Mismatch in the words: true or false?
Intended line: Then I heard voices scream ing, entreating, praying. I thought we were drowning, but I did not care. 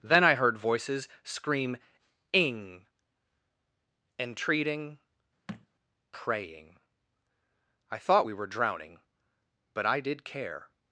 true